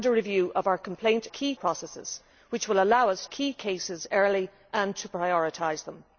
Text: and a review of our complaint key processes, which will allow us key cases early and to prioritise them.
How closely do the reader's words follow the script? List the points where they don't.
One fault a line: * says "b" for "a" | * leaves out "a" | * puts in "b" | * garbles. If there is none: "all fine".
all fine